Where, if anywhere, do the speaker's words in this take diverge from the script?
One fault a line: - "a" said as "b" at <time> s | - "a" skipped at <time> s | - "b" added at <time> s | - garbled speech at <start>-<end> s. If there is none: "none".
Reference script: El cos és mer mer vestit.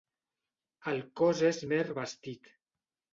- "mer" skipped at 1.8 s